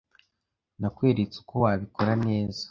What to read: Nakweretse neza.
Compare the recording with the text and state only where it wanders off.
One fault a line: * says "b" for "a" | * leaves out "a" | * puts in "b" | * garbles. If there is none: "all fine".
* puts in "uko wabikora"